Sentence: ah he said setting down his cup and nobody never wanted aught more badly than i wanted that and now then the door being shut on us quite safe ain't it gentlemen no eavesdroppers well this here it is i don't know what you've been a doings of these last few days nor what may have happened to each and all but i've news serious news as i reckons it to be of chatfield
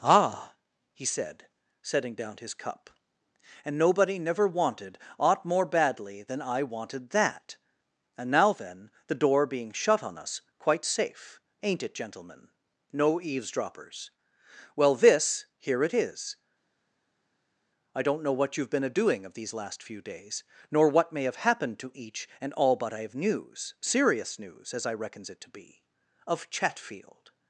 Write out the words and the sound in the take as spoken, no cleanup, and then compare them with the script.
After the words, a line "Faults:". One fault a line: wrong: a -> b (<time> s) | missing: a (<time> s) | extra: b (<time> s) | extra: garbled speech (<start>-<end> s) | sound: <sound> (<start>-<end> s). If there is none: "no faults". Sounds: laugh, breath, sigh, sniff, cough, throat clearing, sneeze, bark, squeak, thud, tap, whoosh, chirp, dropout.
ah he said setting down his cup and nobody never wanted aught more badly than i wanted that and now then the door being shut on us quite safe ain't it gentlemen no eavesdroppers well this here it is i don't know what you've been a doing of these last few days nor what may have happened to each and all but i've news serious news as i reckons it to be of chatfield
Faults:
wrong: doings -> doing (18.9 s)